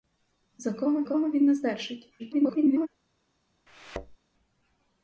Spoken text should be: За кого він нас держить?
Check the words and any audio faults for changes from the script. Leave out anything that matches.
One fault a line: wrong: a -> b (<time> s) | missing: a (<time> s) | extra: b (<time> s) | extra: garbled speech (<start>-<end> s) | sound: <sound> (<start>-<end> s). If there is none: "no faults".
extra: кого (1.0 s)
extra: garbled speech (2.2-2.9 s)
sound: thud (3.7-4.2 s)